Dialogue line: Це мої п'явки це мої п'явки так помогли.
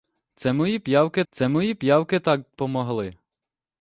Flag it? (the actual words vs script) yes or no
no